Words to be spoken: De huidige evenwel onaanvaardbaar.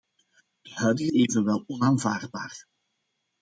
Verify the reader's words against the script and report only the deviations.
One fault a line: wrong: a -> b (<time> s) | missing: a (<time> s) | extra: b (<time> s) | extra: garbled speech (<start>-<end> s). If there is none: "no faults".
no faults